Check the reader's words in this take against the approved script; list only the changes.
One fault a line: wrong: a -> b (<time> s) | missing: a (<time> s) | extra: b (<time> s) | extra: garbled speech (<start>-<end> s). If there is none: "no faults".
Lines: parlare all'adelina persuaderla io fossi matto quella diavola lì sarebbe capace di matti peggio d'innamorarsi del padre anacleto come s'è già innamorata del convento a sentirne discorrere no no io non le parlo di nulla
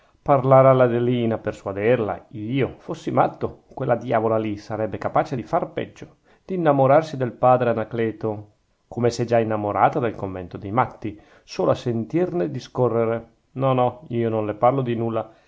wrong: matti -> far (5.4 s)
extra: dei matti solo (10.6 s)